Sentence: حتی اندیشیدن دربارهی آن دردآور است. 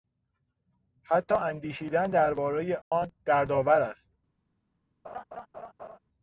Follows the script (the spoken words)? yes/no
yes